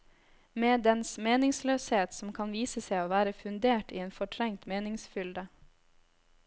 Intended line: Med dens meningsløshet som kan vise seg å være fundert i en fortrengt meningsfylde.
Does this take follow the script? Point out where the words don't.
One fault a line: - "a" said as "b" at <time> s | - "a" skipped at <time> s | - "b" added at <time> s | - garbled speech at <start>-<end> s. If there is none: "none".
none